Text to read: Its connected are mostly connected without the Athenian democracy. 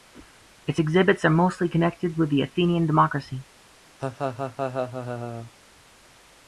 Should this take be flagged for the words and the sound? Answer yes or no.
yes